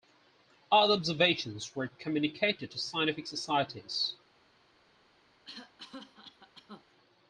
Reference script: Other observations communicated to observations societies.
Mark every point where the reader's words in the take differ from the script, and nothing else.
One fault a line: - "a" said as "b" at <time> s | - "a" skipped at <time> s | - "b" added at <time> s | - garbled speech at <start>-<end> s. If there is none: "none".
- "were" added at 1.8 s
- "observations" said as "scientific" at 2.8 s